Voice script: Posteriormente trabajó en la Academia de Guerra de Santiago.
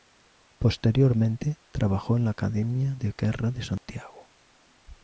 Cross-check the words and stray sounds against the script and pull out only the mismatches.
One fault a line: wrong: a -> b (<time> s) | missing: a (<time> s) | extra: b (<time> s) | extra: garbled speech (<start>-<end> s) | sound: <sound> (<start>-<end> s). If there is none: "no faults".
sound: dropout (3.8-3.9 s)